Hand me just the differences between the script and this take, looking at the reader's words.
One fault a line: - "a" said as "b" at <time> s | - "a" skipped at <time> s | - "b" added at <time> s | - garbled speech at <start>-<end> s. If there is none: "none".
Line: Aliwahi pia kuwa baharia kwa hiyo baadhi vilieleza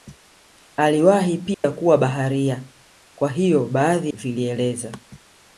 none